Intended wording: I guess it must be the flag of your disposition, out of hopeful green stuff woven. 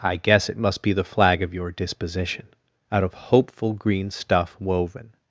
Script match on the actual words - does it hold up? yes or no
yes